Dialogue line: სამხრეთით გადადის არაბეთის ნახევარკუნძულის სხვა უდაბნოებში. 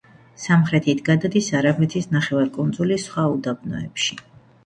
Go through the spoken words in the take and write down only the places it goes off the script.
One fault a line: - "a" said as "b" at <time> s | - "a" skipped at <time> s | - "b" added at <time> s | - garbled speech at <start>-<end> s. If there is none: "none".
none